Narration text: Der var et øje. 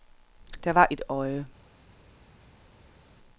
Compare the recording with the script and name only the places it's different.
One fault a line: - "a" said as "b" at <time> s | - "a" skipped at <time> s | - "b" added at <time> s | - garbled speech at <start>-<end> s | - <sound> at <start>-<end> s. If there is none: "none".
none